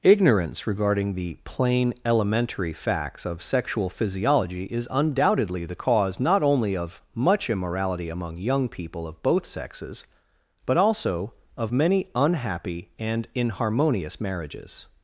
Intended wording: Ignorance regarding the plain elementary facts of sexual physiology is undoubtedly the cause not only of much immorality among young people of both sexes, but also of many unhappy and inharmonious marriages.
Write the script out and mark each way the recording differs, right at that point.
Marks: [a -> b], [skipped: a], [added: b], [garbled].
Ignorance regarding the plain elementary facts of sexual physiology is undoubtedly the cause not only of much immorality among young people of both sexes, but also of many unhappy and inharmonious marriages.